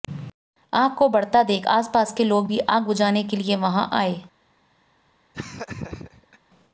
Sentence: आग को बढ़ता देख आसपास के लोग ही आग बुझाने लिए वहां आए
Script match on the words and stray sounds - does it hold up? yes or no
no